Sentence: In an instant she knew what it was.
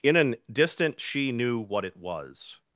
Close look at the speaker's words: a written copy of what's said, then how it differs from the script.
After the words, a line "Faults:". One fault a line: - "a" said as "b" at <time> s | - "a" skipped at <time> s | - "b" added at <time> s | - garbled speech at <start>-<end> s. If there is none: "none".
In an distant she knew what it was.
Faults:
- "instant" said as "distant" at 0.5 s